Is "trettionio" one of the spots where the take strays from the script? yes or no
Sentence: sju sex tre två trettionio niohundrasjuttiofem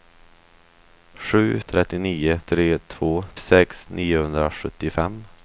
yes